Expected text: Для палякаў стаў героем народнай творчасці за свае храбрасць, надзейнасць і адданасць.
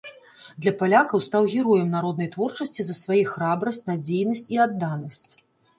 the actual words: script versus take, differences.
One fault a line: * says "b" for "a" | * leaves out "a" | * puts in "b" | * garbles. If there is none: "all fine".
all fine